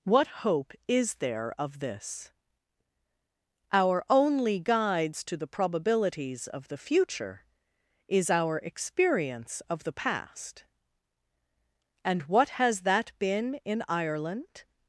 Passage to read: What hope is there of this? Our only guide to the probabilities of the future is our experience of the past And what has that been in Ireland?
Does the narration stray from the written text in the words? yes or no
yes